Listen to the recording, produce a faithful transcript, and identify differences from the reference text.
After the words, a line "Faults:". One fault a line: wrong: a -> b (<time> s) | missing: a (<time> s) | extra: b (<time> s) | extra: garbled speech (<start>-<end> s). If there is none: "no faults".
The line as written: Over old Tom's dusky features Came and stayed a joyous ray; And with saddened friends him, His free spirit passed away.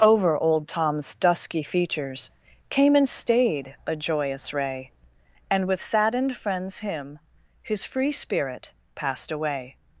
Over old Tom's dusky features Came and stayed a joyous ray; And with saddened friends him, His free spirit passed away.
Faults:
no faults